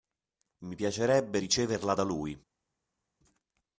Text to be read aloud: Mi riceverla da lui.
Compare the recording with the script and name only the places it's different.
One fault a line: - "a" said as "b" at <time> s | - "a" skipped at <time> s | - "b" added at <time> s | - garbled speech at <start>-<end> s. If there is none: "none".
- "piacerebbe" added at 0.7 s